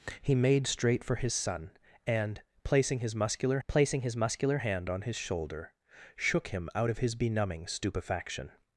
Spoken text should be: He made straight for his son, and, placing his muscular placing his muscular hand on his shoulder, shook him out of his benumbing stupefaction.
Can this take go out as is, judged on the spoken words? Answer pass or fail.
pass